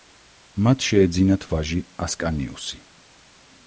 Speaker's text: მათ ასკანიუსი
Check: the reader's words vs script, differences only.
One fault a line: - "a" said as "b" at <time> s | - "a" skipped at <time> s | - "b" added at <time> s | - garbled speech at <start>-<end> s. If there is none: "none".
- "შეეძინათ ვაჟი" added at 0.9 s